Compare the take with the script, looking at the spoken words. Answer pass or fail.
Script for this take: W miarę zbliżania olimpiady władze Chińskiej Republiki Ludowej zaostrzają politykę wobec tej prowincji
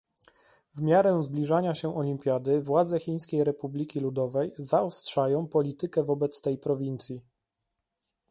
fail